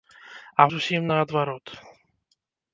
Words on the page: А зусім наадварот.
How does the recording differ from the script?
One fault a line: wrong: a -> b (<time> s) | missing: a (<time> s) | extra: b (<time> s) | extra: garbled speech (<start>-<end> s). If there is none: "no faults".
no faults